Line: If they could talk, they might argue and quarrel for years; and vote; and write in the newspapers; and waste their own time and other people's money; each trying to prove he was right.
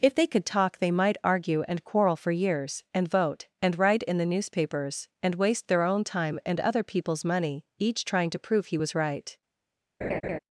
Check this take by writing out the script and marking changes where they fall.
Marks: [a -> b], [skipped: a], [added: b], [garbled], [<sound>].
If they could talk, they might argue and quarrel for years; and vote; and write in the newspapers; and waste their own time and other people's money; each trying to prove he was right. [laugh]